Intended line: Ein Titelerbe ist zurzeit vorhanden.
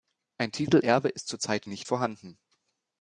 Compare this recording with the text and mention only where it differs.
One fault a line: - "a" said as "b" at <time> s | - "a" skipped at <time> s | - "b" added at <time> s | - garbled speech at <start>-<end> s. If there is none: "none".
- "nicht" added at 1.6 s